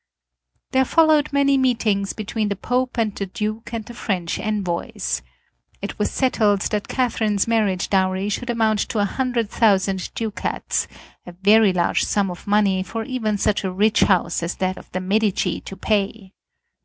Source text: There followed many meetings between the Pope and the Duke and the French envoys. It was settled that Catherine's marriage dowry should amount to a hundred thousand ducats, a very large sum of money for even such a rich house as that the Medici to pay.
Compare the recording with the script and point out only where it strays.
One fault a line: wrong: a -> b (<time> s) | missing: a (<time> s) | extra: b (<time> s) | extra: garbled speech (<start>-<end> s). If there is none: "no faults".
extra: of (14.8 s)